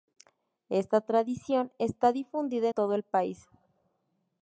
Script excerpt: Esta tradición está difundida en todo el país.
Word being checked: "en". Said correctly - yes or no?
no